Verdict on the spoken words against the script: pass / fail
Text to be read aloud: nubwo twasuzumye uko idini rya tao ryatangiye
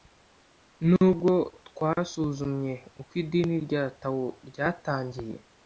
pass